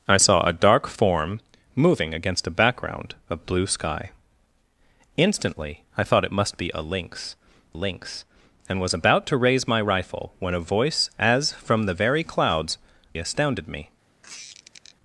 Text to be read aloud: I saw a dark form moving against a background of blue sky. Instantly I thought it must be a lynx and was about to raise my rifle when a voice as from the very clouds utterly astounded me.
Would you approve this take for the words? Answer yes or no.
no